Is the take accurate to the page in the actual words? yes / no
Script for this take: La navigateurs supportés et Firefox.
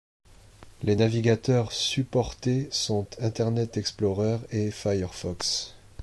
no